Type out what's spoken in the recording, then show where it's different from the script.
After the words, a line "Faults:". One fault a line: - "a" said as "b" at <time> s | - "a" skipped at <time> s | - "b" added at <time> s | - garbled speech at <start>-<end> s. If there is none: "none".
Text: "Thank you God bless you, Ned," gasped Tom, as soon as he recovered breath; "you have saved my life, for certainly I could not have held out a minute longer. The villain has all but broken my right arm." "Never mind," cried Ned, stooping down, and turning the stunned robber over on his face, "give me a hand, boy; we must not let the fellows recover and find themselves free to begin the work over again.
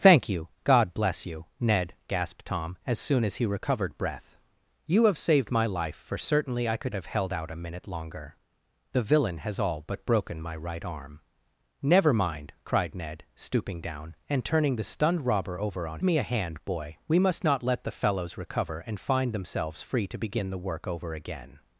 "Thank you God bless you, Ned," gasped Tom, as soon as he recovered breath; "you have saved my life, for certainly I could have held out a minute longer. The villain has all but broken my right arm." "Never mind," cried Ned, stooping down, and turning the stunned robber over on me a hand, boy; we must not let the fellows recover and find themselves free to begin the work over again.
Faults:
- "not" skipped at 7.0 s
- "his face give" skipped at 16.0 s